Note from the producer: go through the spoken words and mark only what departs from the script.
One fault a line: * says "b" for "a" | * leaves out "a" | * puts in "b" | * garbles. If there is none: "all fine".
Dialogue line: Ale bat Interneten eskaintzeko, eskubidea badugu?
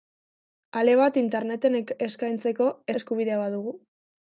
all fine